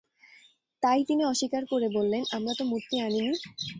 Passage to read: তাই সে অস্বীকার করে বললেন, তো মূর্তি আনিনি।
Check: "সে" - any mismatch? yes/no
yes